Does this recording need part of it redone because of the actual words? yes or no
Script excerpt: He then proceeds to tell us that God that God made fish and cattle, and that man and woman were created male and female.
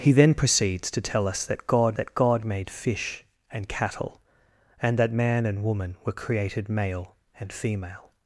no